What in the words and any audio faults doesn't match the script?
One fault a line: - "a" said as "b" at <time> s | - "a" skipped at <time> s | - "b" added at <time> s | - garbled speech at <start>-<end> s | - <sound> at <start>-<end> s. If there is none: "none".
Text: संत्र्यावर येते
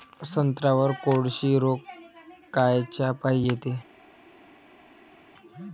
- "कोळशी रोग कायच्यापाई" added at 1.0 s